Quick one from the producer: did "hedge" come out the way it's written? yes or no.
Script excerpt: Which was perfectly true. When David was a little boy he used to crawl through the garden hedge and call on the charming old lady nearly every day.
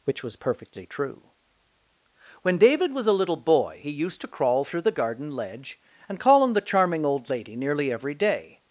no